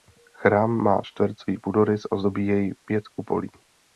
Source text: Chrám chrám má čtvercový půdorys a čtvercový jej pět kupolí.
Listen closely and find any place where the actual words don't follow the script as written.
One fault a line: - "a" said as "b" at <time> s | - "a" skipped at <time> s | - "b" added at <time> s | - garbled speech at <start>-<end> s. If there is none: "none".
- "chrám" skipped at 0.7 s
- "čtvercový" said as "zdobí" at 2.2 s